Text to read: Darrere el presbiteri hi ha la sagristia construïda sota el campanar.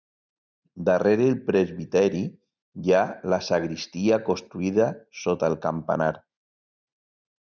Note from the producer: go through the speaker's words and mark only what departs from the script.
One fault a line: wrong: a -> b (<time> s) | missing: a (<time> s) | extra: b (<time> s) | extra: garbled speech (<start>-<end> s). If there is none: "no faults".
no faults